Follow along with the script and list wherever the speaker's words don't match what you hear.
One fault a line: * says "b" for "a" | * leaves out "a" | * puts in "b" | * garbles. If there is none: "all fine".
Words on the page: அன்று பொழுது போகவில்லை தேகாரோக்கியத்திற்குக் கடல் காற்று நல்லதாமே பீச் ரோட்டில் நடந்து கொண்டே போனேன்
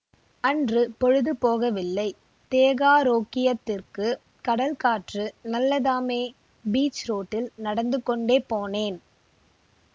all fine